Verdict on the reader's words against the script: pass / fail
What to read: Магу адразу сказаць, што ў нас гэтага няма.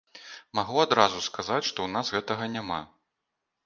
pass